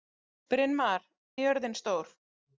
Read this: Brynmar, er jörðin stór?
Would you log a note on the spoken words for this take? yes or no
no